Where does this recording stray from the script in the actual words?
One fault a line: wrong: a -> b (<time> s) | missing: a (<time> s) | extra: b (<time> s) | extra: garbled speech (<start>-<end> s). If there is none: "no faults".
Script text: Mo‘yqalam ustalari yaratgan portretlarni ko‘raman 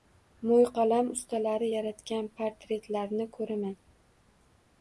no faults